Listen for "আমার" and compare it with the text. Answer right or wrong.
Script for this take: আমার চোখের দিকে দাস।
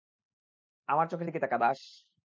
right